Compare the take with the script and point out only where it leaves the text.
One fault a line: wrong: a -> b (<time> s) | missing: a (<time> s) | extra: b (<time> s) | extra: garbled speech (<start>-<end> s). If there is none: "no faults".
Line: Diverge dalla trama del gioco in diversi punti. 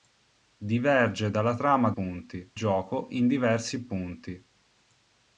wrong: del -> punti (1.9 s)